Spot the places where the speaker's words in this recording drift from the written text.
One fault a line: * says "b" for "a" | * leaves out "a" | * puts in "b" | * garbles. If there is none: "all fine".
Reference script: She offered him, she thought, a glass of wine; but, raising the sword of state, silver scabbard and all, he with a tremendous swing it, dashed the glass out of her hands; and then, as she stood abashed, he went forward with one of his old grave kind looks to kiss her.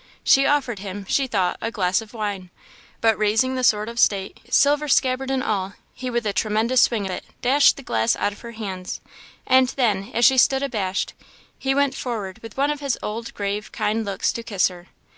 all fine